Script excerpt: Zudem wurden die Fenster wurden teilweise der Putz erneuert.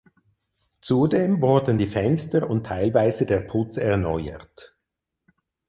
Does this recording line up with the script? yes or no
no